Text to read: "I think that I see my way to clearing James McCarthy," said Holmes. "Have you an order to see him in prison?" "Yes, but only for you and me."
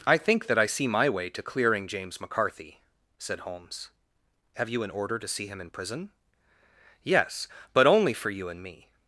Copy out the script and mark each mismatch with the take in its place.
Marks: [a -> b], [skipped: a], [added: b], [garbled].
"I think that I see my way to clearing James McCarthy," said Holmes. "Have you an order to see him in prison?" "Yes, but only for you and me."